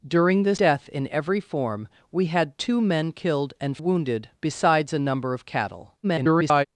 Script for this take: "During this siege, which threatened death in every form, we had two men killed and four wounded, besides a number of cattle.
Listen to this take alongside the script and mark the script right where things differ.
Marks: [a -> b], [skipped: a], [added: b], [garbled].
"During this [skipped: siege, which threatened] death in every form, we had two men killed and [skipped: four] wounded, besides a number of cattle. [garbled]